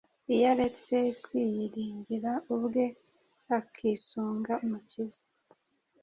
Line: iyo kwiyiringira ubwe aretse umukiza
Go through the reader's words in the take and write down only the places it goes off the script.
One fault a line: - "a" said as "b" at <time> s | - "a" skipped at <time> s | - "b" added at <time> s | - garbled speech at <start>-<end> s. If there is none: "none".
- "aretse" added at 0.5 s
- "aretse" said as "akisunga" at 3.6 s